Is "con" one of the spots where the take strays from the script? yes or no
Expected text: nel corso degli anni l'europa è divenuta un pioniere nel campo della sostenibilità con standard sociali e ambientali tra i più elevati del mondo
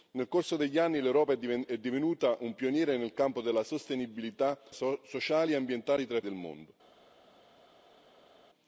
yes